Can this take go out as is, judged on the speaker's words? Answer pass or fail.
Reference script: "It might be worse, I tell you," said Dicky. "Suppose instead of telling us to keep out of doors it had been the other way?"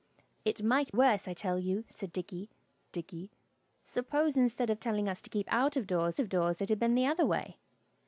fail